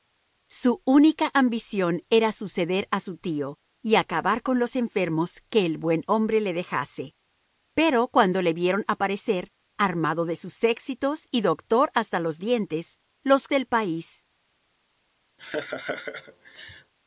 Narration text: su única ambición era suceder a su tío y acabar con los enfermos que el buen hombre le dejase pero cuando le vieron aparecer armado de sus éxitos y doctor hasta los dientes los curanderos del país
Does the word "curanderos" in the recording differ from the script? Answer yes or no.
yes